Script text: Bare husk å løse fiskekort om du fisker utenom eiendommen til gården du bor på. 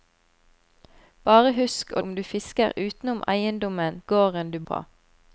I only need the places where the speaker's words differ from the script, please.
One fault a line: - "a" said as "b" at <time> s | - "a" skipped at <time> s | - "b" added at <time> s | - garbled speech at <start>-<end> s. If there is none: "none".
- "løse fiskekort" skipped at 2.0 s
- "til" skipped at 4.0 s
- "bor" skipped at 4.6 s